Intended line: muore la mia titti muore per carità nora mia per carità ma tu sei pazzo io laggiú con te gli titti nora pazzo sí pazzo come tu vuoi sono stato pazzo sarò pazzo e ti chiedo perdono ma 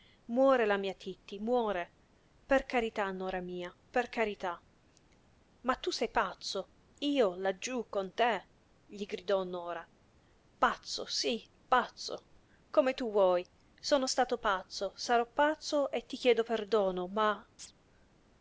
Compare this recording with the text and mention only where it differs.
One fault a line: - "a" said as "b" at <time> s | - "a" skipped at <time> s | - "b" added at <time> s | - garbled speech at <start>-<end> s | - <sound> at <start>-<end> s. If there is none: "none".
- "titti" said as "gridò" at 9.1 s
- chirp at 17.6-17.7 s